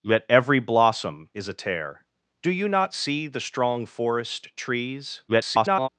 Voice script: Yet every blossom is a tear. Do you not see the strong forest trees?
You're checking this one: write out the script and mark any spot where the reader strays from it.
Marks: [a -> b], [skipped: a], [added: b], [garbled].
Yet every blossom is a tear. Do you not see the strong forest trees? [garbled]